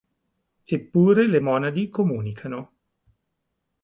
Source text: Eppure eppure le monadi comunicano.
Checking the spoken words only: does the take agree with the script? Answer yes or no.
no